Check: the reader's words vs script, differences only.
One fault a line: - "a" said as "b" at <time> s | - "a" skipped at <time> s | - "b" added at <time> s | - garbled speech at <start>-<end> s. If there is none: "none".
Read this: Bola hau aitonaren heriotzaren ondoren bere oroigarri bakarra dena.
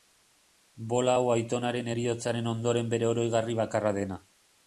none